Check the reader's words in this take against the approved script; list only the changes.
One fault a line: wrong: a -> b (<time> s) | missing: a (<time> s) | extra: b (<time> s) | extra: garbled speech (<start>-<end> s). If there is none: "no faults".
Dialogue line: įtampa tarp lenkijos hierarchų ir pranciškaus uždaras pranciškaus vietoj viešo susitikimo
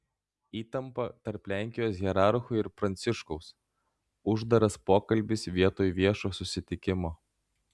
wrong: pranciškaus -> pokalbis (4.9 s)